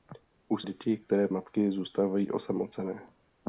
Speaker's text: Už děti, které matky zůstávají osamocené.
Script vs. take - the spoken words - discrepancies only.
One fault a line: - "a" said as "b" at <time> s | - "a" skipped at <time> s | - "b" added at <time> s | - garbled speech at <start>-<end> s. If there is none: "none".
none